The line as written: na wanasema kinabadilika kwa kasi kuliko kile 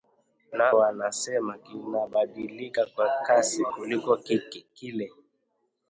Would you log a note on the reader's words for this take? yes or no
no